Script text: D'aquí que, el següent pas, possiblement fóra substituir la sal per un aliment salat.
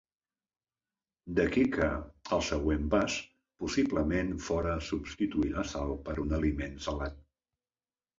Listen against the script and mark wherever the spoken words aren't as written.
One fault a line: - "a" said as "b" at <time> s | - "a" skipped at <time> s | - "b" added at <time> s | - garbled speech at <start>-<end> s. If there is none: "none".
none